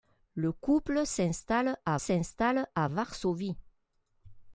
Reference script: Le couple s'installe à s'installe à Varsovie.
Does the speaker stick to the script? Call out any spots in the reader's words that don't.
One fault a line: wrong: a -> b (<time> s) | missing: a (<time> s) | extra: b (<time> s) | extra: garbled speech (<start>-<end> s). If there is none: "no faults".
no faults